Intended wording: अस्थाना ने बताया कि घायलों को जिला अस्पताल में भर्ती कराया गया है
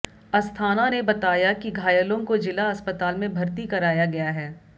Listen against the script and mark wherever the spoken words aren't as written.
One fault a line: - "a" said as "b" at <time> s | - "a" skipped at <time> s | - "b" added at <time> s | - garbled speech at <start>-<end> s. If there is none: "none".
none